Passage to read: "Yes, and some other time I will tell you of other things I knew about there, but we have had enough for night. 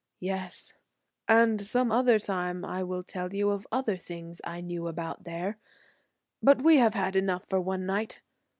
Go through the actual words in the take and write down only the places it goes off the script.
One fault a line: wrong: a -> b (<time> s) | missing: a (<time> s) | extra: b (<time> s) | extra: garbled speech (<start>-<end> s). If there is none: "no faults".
extra: one (7.6 s)